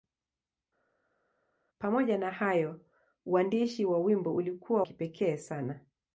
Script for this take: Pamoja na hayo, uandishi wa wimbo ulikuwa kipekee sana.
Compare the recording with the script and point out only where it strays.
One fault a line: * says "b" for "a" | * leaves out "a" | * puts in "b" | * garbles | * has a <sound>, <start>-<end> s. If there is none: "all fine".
all fine